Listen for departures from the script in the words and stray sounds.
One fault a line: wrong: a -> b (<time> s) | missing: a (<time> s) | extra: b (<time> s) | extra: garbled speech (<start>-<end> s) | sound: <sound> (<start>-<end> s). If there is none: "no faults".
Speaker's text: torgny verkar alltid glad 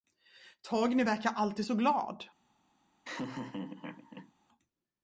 extra: så (1.6 s)
sound: laugh (3.0-4.3 s)